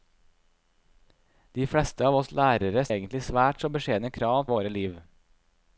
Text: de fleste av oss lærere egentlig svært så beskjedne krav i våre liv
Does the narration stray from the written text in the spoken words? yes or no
no